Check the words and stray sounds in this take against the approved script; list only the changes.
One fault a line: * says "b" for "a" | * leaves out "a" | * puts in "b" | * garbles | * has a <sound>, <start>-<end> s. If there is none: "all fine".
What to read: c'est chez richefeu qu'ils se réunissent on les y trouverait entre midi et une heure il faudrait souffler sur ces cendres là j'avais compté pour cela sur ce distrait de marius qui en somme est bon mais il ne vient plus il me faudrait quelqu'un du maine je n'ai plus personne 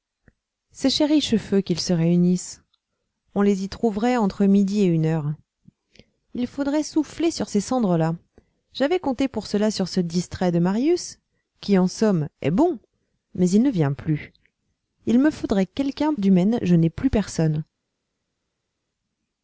all fine